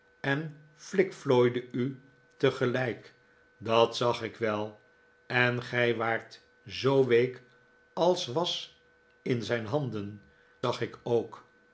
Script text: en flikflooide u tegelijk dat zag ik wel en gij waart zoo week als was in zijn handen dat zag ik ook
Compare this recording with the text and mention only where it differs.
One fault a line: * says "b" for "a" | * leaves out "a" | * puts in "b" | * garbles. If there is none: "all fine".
* leaves out "dat"